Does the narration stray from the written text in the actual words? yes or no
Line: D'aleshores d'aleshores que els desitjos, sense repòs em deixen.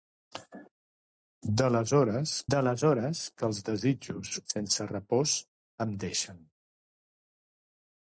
no